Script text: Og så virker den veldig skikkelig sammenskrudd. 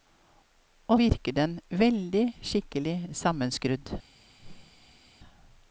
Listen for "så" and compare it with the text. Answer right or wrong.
wrong